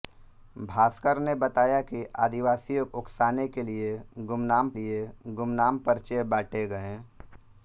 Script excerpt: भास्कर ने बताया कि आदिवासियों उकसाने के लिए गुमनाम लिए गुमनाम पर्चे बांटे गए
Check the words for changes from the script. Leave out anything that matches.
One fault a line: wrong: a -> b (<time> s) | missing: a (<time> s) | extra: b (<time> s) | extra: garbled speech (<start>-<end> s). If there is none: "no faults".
no faults